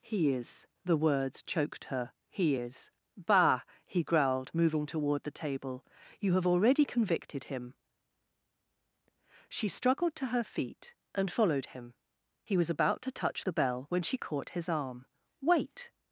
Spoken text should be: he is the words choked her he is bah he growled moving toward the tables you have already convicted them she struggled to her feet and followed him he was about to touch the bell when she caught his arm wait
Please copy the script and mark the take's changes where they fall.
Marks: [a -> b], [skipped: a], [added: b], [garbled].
he is the words choked her he is bah he growled moving toward the [tables -> table] you have already convicted [them -> him] she struggled to her feet and followed him he was about to touch the bell when she caught his arm wait